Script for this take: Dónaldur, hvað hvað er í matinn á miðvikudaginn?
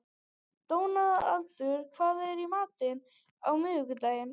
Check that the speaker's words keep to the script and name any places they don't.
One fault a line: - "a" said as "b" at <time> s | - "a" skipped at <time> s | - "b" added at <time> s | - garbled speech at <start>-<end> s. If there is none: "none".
- "hvað" skipped at 2.2 s